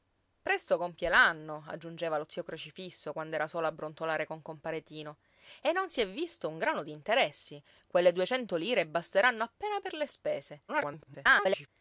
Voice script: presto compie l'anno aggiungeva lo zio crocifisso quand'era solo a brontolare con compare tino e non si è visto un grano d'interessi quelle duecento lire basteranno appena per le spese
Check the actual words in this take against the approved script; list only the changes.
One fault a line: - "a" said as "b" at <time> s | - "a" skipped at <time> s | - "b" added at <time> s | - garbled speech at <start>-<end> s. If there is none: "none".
- garbled speech at 10.7-11.7 s